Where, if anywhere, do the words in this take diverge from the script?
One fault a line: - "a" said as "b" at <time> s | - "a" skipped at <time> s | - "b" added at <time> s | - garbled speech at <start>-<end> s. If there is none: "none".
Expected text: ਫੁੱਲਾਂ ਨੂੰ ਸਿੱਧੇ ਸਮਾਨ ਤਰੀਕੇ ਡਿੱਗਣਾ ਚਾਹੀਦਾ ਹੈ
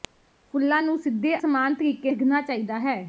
none